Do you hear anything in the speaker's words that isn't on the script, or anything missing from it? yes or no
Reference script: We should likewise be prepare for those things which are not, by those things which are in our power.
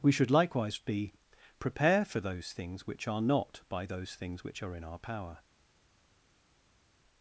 no